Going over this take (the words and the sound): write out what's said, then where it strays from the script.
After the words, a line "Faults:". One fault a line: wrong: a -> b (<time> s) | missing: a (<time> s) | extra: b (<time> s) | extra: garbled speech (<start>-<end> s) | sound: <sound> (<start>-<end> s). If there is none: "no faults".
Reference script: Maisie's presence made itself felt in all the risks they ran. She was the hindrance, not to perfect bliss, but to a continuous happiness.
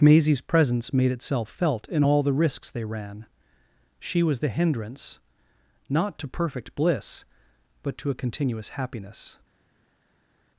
Maisie's presence made itself felt in all the risks they ran. She was the hindrance, not to perfect bliss, but to a continuous happiness.
Faults:
no faults